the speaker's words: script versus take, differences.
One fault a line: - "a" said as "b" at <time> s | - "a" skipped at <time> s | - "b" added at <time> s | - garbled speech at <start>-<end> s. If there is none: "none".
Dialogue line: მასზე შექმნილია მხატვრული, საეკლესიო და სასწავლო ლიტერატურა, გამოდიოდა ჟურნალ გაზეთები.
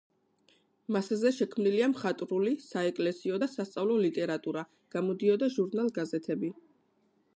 none